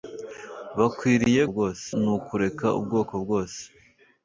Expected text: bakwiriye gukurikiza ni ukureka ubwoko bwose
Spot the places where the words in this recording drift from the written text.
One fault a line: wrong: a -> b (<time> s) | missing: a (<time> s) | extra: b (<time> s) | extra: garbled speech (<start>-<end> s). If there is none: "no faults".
wrong: gukurikiza -> bwose (1.5 s)